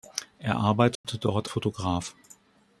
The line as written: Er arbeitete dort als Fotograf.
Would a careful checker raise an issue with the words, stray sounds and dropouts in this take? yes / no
yes